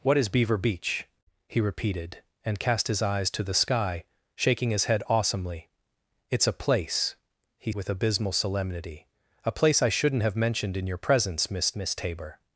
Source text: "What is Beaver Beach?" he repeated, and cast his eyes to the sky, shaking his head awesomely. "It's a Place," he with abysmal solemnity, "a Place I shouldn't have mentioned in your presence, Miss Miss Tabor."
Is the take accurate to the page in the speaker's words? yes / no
yes